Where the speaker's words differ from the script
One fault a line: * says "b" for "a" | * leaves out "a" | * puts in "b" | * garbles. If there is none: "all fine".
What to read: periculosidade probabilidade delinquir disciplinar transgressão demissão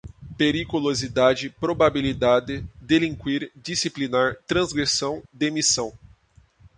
all fine